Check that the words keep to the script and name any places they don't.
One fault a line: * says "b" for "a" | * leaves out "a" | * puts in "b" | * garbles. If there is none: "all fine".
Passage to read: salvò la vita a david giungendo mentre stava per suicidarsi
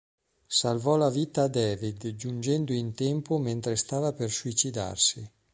* puts in "in tempo"